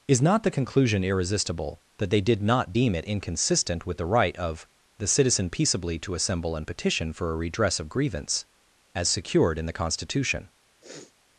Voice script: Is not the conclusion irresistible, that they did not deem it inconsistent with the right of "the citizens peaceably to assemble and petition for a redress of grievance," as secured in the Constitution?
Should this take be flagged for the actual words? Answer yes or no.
yes